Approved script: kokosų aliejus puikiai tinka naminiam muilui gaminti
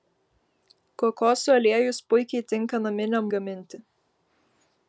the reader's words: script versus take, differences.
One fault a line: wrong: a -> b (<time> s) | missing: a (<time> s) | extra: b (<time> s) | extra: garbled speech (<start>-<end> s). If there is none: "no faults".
missing: muilui (3.3 s)